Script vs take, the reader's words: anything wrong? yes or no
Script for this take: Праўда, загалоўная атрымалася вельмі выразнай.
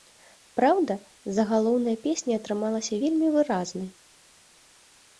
yes